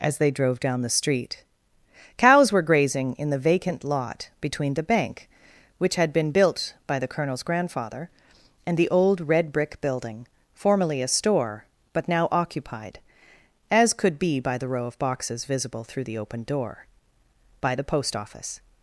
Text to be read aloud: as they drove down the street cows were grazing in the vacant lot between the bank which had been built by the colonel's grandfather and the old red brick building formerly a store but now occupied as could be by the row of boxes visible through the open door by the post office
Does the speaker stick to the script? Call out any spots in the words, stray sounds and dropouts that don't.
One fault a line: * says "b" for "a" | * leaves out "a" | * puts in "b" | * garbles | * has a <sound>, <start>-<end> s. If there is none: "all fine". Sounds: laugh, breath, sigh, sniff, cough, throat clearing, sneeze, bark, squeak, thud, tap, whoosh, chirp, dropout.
all fine